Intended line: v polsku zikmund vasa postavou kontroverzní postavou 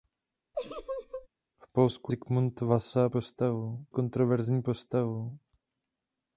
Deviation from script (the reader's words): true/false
false